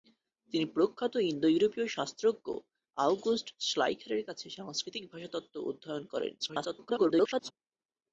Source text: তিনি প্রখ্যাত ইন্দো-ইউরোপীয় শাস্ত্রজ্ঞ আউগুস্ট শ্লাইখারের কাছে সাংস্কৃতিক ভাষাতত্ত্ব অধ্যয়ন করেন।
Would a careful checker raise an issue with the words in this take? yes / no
yes